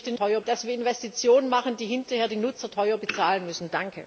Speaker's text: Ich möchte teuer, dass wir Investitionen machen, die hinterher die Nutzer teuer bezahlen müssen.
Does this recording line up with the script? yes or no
yes